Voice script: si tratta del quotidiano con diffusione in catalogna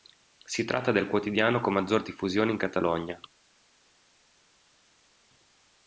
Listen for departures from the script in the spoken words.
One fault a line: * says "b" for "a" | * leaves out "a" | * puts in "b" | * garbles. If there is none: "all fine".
* puts in "maggior"